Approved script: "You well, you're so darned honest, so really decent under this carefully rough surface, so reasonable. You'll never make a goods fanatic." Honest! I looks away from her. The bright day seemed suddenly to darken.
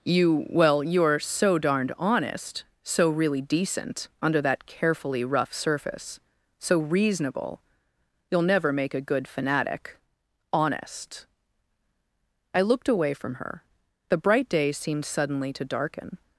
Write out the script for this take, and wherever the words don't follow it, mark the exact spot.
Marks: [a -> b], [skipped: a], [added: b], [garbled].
"You well, you're so darned honest, so really decent under [this -> that] carefully rough surface, so reasonable. You'll never make a [goods -> good] fanatic." Honest! I [looks -> looked] away from her. The bright day seemed suddenly to darken.